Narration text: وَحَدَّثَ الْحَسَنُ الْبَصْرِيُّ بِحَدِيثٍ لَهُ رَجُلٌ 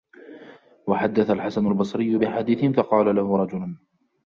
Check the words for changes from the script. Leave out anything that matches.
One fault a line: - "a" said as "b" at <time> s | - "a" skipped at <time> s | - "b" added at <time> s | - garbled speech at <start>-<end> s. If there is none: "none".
- "فَقَالَ" added at 2.7 s